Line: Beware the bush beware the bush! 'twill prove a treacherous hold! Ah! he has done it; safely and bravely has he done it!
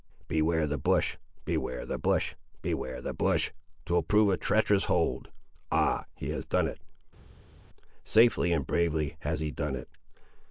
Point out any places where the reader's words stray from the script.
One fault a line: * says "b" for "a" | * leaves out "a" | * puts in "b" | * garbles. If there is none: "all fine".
* puts in "beware the bush"